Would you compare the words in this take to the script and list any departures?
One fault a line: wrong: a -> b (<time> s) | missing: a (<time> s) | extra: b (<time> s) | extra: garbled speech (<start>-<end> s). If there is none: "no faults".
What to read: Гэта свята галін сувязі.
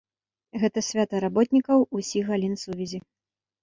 extra: работнікаў усіх (1.3 s)